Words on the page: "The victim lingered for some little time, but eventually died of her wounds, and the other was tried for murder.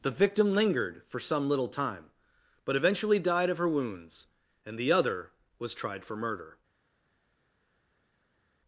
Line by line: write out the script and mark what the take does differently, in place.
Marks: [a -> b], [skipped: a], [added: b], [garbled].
"The victim lingered for some little time, but eventually died of her wounds, and the other was tried for murder.